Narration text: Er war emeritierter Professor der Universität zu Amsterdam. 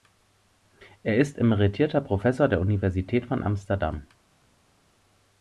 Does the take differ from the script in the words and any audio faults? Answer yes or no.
yes